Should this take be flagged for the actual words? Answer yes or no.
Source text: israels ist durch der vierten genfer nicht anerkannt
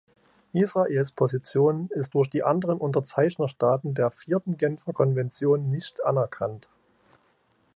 yes